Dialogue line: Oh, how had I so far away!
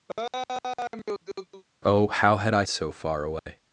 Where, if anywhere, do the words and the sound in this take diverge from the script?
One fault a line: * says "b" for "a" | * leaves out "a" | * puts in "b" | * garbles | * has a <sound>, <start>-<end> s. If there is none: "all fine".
* has a laugh, 0.1-1.6 s
* has a dropout, 3.4-3.5 s